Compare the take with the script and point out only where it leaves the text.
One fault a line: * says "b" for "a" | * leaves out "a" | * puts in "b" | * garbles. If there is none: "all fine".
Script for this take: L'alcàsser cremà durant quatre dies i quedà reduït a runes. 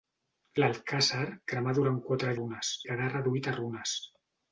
* says "runes" for "dies"